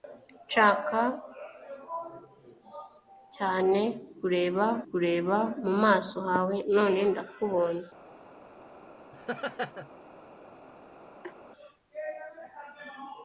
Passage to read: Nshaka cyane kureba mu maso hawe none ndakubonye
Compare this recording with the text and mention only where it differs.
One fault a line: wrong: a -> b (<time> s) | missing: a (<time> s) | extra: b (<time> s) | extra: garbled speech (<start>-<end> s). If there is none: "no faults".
extra: kureba (4.9 s)